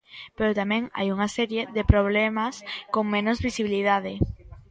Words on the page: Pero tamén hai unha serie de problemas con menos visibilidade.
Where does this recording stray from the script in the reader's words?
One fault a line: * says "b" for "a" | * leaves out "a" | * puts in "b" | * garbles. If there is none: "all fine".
all fine